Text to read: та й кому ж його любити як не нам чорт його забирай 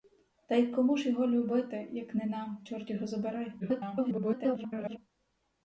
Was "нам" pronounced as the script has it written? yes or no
yes